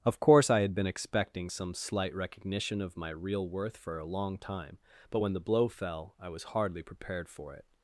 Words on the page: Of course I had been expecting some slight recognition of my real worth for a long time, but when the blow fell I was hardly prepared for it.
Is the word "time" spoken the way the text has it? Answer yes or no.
yes